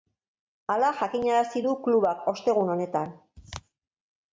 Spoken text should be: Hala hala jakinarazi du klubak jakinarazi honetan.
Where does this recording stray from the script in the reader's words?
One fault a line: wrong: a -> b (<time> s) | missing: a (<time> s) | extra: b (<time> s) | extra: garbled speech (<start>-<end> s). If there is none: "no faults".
missing: hala (0.9 s)
wrong: jakinarazi -> ostegun (2.4 s)